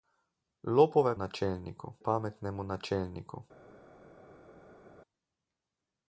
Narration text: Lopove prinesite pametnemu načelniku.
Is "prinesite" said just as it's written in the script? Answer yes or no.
no